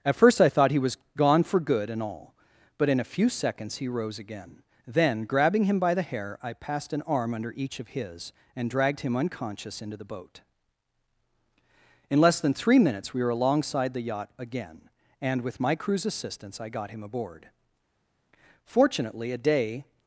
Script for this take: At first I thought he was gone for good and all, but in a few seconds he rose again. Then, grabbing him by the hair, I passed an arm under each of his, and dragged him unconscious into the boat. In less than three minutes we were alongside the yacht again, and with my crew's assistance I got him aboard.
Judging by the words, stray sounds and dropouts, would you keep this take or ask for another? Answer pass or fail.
fail